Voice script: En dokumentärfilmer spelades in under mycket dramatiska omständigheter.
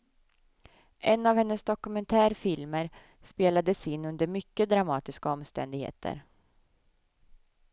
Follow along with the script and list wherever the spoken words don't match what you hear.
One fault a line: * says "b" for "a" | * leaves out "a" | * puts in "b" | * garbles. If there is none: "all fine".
* puts in "av hennes"